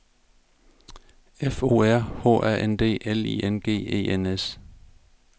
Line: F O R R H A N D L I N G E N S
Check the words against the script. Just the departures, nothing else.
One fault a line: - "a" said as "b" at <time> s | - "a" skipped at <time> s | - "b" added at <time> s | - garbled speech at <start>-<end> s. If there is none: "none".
- "R" skipped at 2.0 s